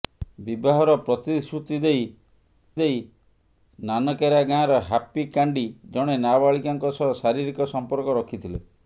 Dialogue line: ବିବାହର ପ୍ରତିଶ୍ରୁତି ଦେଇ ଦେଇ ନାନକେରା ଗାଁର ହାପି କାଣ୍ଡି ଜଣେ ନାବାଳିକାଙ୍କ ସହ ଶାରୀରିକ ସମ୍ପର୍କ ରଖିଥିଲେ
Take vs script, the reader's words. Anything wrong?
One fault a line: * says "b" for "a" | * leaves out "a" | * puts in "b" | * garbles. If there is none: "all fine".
all fine